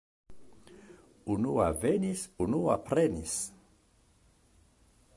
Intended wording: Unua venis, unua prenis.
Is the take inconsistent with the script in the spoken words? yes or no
no